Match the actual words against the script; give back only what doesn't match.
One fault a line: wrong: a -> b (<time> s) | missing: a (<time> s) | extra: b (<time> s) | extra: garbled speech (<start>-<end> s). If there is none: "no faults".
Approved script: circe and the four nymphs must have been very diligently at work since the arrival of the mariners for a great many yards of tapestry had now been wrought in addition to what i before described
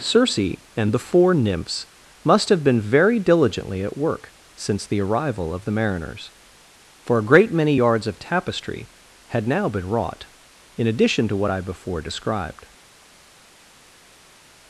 no faults